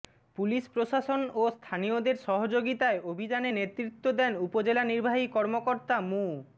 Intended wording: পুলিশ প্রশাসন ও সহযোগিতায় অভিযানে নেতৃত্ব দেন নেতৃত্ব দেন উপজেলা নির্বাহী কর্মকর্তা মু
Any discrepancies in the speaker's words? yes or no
yes